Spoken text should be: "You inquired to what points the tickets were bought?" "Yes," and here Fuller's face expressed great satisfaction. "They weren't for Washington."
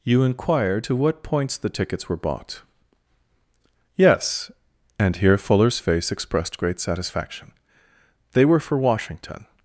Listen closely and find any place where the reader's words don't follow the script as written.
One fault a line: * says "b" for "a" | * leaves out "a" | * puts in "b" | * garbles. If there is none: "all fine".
* says "were" for "weren't"